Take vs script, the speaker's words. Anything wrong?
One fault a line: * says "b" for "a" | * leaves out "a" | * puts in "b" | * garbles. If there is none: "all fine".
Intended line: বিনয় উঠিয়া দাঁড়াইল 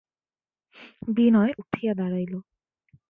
all fine